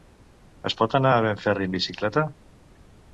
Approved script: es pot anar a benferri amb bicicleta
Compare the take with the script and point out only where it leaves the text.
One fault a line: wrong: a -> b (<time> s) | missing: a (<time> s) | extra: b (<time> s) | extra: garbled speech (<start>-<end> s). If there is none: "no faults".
no faults